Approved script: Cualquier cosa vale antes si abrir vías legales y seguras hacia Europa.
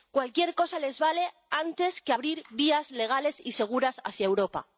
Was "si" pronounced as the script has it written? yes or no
no